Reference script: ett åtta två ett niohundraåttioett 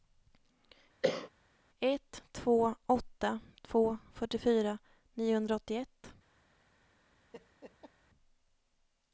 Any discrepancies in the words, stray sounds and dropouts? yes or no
yes